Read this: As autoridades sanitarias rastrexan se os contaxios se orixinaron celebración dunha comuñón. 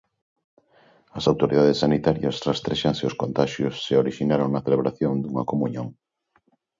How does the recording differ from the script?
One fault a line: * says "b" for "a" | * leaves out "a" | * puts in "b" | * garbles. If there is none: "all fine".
* puts in "na"